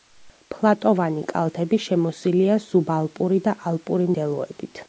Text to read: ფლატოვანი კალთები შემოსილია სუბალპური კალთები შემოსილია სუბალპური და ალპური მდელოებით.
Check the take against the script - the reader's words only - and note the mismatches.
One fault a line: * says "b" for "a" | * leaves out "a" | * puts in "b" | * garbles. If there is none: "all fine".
* leaves out "კალთები შემოსილია სუბალპური"